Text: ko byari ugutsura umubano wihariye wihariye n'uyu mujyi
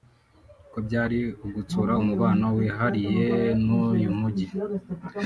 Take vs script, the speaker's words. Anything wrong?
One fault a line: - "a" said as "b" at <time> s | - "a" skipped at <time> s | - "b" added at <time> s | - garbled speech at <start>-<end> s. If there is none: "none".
- "wihariye" skipped at 3.3 s